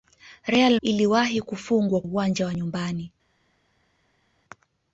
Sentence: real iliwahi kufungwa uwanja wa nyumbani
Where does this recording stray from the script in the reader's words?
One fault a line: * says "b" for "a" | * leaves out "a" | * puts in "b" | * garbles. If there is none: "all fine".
all fine